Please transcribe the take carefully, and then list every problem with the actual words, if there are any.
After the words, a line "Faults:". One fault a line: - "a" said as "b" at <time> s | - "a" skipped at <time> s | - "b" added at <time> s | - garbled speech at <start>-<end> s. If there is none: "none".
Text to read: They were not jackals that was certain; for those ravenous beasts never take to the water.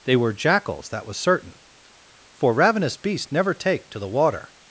They were jackals that was certain; for ravenous beasts never take to the water.
Faults:
- "not" skipped at 0.3 s
- "those" skipped at 2.5 s